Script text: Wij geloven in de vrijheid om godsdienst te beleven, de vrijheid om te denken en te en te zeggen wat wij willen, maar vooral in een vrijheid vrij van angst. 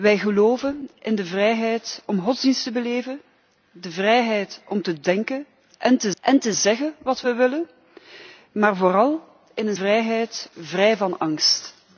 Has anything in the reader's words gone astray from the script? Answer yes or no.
no